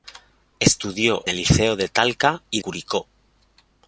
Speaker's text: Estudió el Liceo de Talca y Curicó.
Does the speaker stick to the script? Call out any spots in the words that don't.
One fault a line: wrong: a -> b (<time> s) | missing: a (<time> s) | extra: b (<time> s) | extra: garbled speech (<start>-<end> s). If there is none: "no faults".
no faults